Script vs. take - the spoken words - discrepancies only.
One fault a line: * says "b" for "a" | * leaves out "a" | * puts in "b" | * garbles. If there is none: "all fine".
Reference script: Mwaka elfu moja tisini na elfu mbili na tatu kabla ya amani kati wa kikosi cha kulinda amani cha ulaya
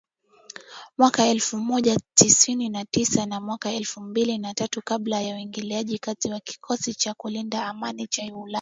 * puts in "tisa na mwaka"
* says "uingiliaji" for "amani"